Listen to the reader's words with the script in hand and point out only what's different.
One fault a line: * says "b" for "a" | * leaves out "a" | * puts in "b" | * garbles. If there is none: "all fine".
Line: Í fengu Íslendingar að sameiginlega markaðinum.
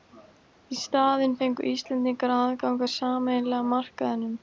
* puts in "staðinn"
* puts in "aðgang"